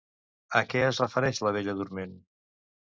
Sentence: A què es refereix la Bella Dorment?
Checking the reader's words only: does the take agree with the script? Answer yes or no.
yes